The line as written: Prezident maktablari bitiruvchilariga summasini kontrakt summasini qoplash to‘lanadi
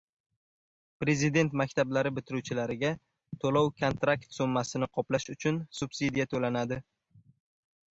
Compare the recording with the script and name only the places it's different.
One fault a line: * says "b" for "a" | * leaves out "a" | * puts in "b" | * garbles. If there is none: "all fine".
* says "to‘lov" for "summasini"
* puts in "uchun subsidiya"